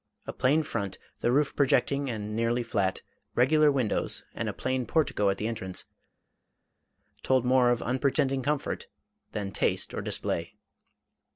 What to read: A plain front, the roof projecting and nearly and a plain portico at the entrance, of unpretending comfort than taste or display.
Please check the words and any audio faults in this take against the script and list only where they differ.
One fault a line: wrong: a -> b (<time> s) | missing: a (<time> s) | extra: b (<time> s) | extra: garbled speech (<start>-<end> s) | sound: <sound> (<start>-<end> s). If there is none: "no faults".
extra: flat regular windows (2.6 s)
extra: told more (7.2 s)